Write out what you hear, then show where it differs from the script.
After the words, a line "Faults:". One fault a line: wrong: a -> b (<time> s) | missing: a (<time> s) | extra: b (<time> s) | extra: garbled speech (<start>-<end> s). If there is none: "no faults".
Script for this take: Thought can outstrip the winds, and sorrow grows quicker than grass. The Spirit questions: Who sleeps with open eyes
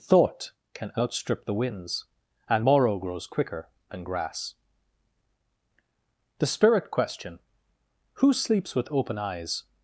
Thought can outstrip the winds, and morrow grows quicker than grass. The Spirit question: Who sleeps with open eyes
Faults:
wrong: sorrow -> morrow (2.6 s)
wrong: questions -> question (6.9 s)